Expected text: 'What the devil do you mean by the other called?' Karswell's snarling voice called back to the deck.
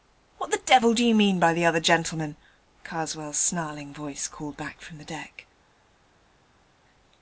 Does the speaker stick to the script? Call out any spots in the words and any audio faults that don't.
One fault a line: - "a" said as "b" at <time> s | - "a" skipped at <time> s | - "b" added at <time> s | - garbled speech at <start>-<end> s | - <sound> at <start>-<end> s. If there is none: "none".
- "called" said as "gentleman" at 1.8 s
- "to" said as "from" at 4.8 s